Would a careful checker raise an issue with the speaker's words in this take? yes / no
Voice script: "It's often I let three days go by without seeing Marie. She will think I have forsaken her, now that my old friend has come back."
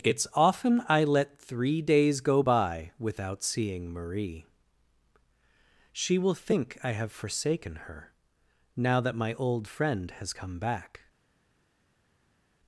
no